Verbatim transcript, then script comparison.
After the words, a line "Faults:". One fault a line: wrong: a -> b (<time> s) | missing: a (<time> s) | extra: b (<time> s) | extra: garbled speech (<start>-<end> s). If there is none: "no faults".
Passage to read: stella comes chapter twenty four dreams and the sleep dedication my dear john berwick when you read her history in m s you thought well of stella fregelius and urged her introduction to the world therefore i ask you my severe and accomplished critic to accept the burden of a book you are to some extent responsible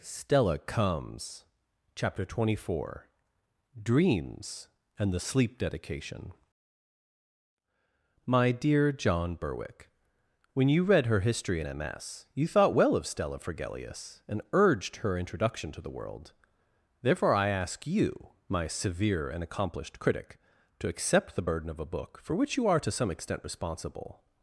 stella comes chapter twenty four dreams and the sleep dedication my dear john berwick when you read her history in m s you thought well of stella fregelius and urged her introduction to the world therefore i ask you my severe and accomplished critic to accept the burden of a book for which you are to some extent responsible
Faults:
extra: for which (22.2 s)